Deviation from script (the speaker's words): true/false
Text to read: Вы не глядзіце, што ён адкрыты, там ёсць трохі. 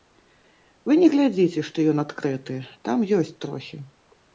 false